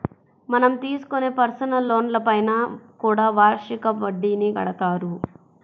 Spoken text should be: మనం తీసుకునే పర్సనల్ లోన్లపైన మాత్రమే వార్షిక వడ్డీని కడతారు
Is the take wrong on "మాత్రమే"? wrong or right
wrong